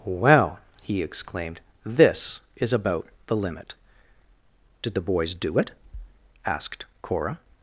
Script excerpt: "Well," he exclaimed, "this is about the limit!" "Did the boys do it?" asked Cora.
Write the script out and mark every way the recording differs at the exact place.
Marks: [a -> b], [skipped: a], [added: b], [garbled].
"Well," he exclaimed, "this is about the limit!" "Did the boys do it?" asked Cora.